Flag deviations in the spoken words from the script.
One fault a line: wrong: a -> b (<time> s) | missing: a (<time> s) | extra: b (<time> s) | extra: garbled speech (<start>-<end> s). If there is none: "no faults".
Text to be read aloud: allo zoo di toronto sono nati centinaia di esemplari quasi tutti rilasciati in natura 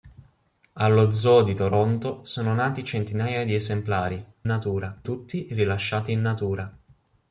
wrong: quasi -> natura (4.5 s)